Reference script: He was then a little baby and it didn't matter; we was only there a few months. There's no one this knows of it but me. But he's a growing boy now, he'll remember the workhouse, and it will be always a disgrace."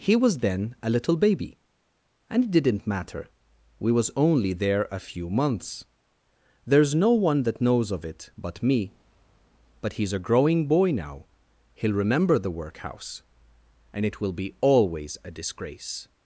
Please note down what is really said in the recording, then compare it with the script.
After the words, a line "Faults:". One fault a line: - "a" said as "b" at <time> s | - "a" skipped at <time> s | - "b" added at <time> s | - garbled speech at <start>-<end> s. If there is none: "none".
He was then a little baby and it didn't matter; we was only there a few months. There's no one that knows of it but me. But he's a growing boy now, he'll remember the workhouse, and it will be always a disgrace."
Faults:
- "this" said as "that" at 7.4 s